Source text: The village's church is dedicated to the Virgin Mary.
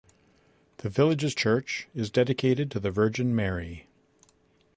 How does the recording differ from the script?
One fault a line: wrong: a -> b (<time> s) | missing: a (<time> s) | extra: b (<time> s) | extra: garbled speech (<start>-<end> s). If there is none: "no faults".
no faults